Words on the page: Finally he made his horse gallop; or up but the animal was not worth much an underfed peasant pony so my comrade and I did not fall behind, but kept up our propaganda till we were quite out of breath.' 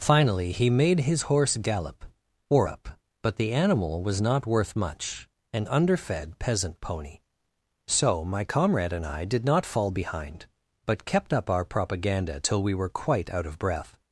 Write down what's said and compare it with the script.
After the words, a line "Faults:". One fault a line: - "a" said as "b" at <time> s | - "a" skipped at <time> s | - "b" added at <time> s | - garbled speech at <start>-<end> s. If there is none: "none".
Finally he made his horse gallop; or up but the animal was not worth much an underfed peasant pony so my comrade and I did not fall behind, but kept up our propaganda till we were quite out of breath.'
Faults:
none